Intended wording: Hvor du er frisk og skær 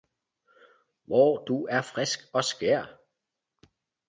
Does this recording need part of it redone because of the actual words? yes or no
no